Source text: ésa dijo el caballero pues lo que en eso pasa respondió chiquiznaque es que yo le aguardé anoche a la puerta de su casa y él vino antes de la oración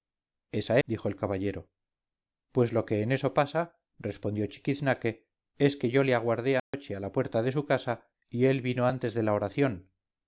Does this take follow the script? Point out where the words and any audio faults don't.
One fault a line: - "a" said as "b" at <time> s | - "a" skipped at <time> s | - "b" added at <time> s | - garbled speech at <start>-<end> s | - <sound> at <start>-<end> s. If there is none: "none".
- dropout at 6.6-6.7 s